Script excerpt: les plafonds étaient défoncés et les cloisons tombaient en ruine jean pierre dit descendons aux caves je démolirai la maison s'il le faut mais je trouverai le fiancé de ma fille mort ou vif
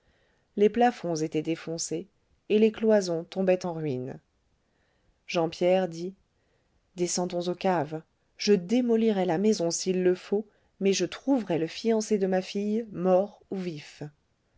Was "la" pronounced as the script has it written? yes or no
yes